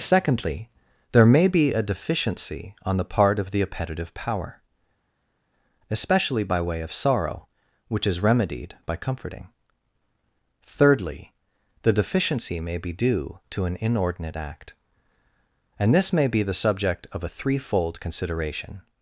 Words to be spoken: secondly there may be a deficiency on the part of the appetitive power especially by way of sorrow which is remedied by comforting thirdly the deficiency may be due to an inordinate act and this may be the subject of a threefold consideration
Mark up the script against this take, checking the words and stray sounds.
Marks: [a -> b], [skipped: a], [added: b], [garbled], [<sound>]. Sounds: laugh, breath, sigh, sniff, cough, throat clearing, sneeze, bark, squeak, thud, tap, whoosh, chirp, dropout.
secondly there may be a deficiency on the part of the appetitive power especially by way of sorrow which is remedied by comforting thirdly the deficiency may be due to an inordinate act and this may be the subject of a threefold consideration